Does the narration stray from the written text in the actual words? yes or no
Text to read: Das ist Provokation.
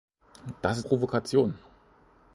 no